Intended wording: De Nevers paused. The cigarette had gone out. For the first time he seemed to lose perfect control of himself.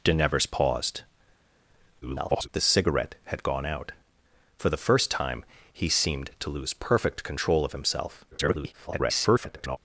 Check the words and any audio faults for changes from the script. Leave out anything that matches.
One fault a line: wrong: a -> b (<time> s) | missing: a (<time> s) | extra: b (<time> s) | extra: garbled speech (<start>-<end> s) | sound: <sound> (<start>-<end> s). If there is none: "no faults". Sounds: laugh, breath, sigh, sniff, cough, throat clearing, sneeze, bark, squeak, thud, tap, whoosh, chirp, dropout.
extra: garbled speech (2.0-2.5 s)
extra: garbled speech (8.3-9.8 s)